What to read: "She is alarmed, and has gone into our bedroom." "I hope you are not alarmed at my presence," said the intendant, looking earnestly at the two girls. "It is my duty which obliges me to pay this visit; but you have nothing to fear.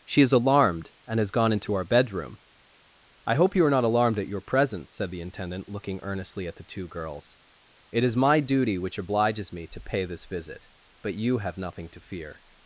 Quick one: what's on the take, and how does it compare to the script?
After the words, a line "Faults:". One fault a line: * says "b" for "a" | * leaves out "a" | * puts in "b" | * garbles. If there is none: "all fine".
"She is alarmed, and has gone into our bedroom." "I hope you are not alarmed at your presence," said the intendant, looking earnestly at the two girls. "It is my duty which obliges me to pay this visit; but you have nothing to fear.
Faults:
* says "your" for "my"